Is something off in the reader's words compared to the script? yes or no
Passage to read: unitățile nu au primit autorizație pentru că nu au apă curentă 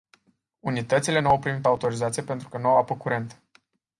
no